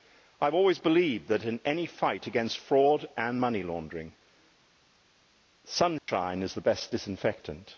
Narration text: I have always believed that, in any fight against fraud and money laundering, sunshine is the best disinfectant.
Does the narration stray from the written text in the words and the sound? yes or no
yes